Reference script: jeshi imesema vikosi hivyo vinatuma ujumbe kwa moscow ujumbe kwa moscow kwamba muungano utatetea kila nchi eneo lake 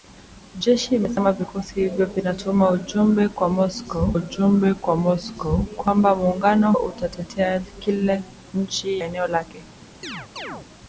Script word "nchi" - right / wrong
right